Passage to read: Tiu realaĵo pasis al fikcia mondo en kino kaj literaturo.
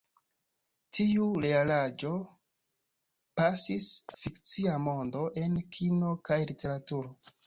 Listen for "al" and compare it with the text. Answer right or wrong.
wrong